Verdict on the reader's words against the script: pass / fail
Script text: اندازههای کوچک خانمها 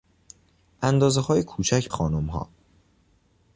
pass